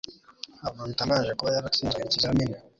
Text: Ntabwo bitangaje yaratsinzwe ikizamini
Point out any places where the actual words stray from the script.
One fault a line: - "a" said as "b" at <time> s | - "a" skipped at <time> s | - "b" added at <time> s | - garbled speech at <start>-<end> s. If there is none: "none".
- "kuba" added at 1.4 s